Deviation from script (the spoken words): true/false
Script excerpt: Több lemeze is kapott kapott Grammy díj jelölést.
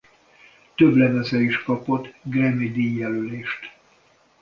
true